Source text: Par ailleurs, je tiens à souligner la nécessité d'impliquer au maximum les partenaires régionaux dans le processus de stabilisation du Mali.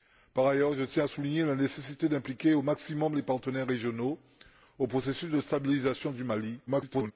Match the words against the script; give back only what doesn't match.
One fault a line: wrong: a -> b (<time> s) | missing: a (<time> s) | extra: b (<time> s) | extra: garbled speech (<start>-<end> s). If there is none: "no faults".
extra: garbled speech (6.7-7.1 s)